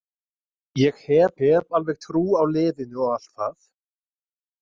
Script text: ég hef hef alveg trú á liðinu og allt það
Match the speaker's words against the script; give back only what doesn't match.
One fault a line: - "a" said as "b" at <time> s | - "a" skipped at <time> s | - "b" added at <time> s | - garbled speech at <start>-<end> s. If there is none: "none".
none